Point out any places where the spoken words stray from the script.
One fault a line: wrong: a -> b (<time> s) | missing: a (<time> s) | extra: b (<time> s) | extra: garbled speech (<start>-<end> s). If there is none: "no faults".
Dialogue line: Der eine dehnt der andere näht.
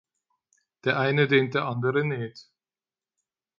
no faults